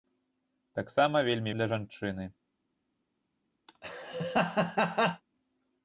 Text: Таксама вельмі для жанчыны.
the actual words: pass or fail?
pass